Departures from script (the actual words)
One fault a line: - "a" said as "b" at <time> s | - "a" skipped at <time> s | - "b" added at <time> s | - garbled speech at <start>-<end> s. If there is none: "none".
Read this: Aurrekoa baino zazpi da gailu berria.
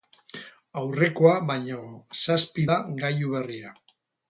none